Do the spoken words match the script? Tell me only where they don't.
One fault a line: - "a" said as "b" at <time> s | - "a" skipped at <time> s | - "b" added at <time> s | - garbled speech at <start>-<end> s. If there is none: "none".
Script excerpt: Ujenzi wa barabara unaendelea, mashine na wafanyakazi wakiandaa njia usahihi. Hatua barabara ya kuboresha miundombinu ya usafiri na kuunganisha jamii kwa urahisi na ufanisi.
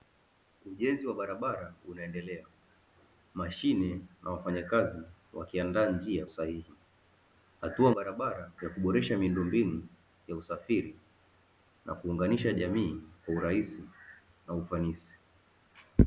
none